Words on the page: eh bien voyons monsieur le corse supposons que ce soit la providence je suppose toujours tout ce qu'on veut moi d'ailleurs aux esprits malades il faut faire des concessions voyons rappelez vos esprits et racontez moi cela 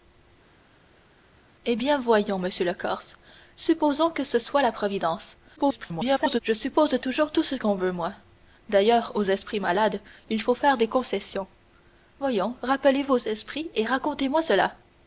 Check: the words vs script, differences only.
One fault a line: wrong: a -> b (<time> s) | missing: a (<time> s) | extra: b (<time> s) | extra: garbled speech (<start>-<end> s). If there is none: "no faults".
extra: garbled speech (5.6-6.4 s)